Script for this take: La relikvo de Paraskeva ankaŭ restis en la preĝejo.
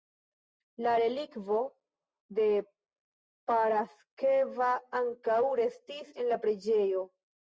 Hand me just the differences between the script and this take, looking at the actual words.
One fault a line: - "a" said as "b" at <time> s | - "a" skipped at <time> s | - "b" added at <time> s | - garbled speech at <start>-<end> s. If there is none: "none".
none